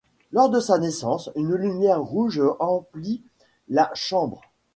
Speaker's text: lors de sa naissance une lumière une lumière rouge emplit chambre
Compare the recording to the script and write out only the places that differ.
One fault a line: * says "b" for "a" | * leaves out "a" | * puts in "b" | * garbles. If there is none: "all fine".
* leaves out "une lumière"
* puts in "la"